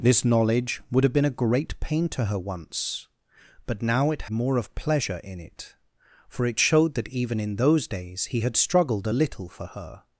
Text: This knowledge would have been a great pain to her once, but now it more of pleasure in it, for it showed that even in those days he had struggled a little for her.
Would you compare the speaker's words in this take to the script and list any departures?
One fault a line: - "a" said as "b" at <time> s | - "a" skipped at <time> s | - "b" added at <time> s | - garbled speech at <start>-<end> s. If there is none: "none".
none